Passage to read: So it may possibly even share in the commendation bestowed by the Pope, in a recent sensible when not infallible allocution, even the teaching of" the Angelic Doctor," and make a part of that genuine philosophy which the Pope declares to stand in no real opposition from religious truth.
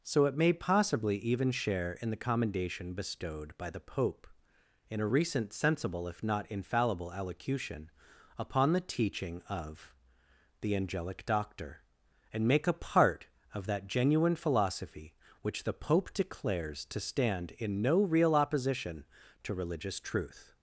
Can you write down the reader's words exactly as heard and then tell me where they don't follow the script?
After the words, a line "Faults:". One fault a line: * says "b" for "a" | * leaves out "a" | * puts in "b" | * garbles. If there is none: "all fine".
So it may possibly even share in the commendation bestowed by the Pope, in a recent sensible if not infallible allocution, upon the teaching of" the Angelic Doctor," and make a part of that genuine philosophy which the Pope declares to stand in no real opposition to religious truth.
Faults:
* says "if" for "when"
* says "upon" for "even"
* says "to" for "from"